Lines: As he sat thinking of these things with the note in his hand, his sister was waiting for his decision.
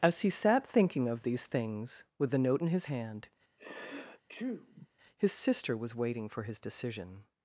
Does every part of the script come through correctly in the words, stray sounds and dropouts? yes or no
no